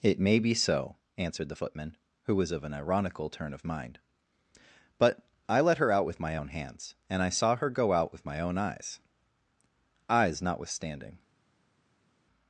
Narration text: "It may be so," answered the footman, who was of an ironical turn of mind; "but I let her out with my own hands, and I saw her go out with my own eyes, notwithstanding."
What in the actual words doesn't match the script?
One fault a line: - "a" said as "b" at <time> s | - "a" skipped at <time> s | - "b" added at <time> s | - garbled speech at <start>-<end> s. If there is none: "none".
- "eyes" added at 10.1 s